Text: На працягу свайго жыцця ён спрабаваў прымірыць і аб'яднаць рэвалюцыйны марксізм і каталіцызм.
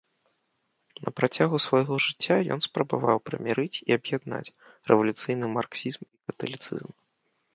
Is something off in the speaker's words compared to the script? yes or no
no